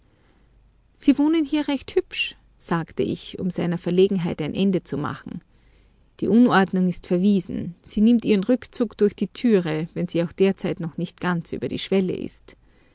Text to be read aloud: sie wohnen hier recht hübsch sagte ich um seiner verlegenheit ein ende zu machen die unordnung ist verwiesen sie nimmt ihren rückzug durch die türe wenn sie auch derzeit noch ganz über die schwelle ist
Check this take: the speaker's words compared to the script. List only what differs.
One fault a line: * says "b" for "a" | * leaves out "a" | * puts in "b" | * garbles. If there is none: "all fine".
* puts in "nicht"